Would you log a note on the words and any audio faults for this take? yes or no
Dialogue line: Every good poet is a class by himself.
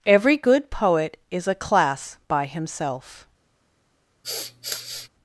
yes